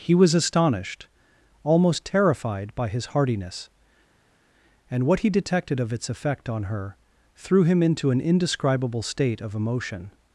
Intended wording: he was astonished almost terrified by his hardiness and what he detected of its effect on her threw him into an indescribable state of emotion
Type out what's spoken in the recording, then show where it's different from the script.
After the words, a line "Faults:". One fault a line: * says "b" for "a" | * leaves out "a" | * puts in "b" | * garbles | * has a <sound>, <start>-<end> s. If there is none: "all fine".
he was astonished almost terrified by his hardiness and what he detected of its effect on her threw him into an indescribable state of emotion
Faults:
all fine